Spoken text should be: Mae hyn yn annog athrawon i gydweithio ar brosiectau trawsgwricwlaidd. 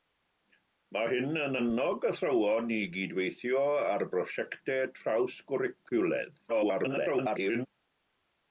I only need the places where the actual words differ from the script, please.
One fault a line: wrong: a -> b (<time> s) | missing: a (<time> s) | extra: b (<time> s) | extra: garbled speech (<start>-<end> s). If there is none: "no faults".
extra: garbled speech (6.5-7.7 s)